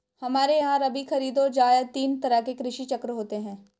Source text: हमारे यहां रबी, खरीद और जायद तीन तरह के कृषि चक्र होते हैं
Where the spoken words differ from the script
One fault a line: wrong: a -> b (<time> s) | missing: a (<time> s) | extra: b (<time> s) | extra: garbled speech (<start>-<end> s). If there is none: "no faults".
no faults